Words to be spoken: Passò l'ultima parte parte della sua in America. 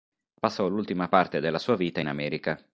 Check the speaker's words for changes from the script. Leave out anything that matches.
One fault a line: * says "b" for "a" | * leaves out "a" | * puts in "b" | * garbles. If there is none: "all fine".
* leaves out "parte"
* puts in "vita"